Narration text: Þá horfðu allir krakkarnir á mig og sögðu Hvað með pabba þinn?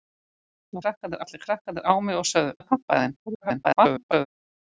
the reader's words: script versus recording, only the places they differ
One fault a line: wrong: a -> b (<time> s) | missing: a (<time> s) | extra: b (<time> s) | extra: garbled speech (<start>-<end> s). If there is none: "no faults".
wrong: horfðu -> krakkarnir (0.8 s)
missing: Hvað (2.5 s)
extra: garbled speech (3.3-4.3 s)